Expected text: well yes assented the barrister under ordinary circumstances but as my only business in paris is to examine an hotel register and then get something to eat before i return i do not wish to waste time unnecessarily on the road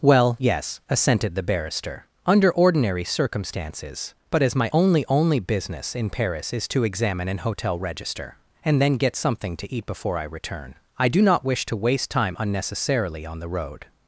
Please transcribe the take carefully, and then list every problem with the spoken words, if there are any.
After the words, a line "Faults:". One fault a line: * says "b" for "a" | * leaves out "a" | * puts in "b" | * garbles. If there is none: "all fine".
well yes assented the barrister under ordinary circumstances but as my only only business in paris is to examine an hotel register and then get something to eat before i return i do not wish to waste time unnecessarily on the road
Faults:
* puts in "only"